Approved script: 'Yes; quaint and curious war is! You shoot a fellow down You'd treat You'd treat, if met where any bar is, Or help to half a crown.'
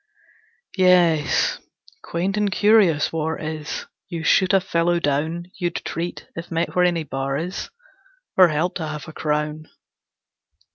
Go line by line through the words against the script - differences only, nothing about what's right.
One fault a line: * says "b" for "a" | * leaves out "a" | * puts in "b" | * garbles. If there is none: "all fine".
* leaves out "You'd treat"